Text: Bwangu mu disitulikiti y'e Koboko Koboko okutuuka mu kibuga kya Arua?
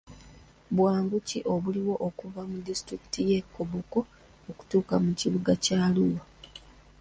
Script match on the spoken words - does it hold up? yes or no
no